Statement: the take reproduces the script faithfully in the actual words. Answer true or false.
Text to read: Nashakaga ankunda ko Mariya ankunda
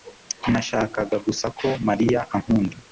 false